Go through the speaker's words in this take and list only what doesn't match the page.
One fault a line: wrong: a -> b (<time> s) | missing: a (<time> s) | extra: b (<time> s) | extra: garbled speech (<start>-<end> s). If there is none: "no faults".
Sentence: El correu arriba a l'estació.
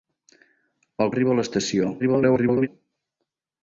missing: correu (1.1 s)
extra: garbled speech (2.0-2.7 s)